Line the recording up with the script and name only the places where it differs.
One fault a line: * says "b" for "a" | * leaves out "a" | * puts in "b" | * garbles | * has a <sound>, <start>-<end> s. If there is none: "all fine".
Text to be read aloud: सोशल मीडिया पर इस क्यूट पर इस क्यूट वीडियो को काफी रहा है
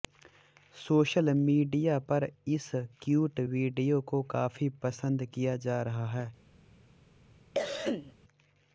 * says "वीडियो को काफी पसंद किया जा" for "पर इस क्यूट वीडियो को काफी"
* has a cough, 7.5-8.1 s